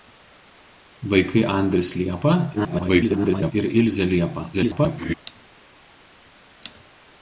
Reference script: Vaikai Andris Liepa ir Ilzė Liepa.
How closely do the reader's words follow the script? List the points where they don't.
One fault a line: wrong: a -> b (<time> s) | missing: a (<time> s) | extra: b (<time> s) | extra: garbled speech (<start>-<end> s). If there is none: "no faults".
extra: garbled speech (2.5-3.5 s)
extra: garbled speech (4.5-5.1 s)